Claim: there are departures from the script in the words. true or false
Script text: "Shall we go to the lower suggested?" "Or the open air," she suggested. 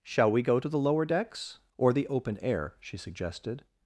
true